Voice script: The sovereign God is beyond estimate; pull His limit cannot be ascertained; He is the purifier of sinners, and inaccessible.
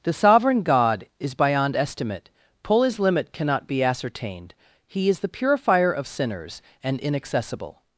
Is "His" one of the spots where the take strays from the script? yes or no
no